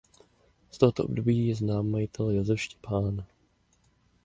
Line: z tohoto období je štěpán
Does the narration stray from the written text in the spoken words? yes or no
yes